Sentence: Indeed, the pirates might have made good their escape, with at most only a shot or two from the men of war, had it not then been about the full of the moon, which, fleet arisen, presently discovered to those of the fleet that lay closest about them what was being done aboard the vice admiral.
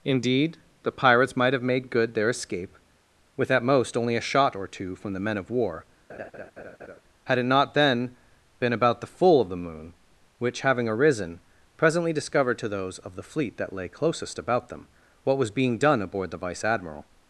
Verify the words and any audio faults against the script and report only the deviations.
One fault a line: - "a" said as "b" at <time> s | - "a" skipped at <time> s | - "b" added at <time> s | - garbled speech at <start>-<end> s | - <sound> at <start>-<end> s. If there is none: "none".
- laugh at 6.1-7.0 s
- "fleet" said as "having" at 10.6 s